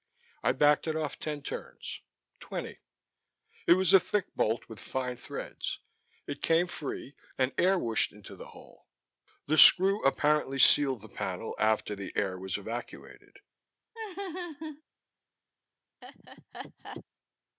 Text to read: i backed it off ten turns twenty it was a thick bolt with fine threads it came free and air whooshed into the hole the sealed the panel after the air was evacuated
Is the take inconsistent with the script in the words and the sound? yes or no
yes